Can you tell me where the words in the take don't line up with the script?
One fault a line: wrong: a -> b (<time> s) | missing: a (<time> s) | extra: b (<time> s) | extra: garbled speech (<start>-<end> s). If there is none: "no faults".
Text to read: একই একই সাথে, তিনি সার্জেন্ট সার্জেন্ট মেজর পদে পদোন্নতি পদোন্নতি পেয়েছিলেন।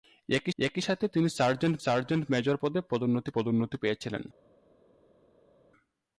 no faults